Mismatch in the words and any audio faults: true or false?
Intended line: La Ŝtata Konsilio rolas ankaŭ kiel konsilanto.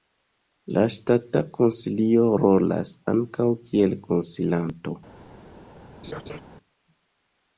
true